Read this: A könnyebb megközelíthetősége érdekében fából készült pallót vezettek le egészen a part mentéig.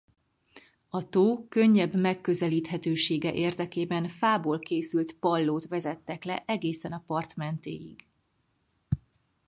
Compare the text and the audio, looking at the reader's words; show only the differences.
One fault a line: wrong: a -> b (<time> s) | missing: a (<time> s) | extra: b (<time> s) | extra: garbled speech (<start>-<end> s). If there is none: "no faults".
extra: tó (1.1 s)